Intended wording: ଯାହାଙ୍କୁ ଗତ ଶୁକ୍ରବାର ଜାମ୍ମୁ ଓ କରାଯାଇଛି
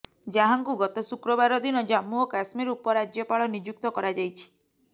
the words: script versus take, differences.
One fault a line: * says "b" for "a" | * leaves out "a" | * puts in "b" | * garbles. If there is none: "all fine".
* puts in "ଦିନ"
* puts in "କାଶ୍ମୀର ଉପରାଜ୍ୟପାଳ ନିଯୁକ୍ତ"